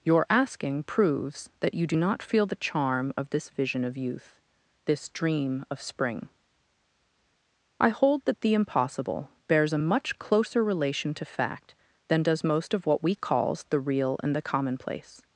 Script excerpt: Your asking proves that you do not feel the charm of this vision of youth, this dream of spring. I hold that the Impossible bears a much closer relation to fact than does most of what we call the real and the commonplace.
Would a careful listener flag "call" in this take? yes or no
yes